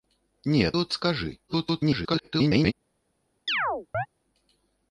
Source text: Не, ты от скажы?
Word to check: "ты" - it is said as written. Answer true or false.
false